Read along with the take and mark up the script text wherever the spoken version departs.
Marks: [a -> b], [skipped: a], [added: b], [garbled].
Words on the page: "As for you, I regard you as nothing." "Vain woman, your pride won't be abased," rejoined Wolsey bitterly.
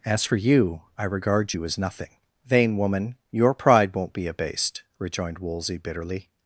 "As for you, I regard you as nothing." "Vain woman, your pride won't be abased," rejoined Wolsey bitterly.